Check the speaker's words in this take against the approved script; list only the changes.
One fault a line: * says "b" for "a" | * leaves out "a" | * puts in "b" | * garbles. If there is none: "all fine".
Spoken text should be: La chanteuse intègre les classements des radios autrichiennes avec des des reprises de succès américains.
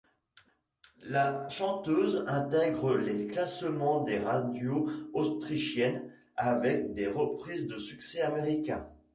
* leaves out "des"